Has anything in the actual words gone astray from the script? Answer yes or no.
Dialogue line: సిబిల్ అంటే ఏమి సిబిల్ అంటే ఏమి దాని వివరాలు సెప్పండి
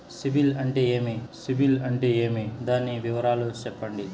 no